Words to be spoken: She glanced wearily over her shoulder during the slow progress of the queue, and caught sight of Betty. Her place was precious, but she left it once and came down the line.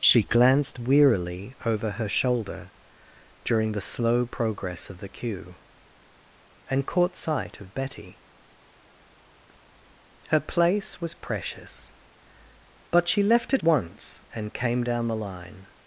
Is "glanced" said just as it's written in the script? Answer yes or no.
yes